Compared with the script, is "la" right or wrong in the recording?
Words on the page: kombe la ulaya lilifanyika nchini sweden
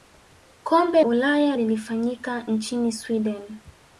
wrong